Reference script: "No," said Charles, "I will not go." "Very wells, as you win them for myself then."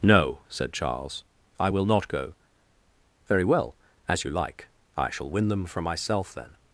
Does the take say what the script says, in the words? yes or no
no